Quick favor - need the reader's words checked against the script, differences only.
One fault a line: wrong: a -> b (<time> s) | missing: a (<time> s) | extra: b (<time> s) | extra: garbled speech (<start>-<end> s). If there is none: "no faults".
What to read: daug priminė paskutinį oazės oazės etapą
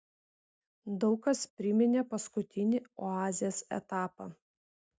extra: kas (1.2 s)
missing: oazės (3.6 s)